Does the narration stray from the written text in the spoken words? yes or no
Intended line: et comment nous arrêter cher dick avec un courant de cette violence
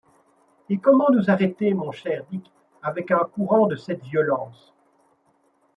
yes